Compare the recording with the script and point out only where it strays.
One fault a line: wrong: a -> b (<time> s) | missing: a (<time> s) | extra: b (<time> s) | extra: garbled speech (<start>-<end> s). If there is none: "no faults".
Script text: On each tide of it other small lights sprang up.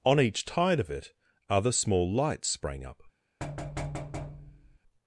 no faults